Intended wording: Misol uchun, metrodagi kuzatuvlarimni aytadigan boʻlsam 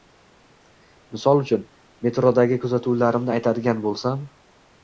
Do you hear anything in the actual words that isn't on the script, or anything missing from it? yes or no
no